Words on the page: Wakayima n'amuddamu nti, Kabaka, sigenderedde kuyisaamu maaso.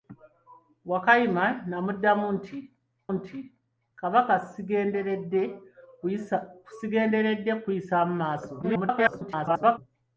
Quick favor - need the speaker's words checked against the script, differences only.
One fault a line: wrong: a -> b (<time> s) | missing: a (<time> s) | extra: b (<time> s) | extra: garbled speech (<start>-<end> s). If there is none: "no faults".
extra: nti (3.2 s)
extra: garbled speech (8.6-9.8 s)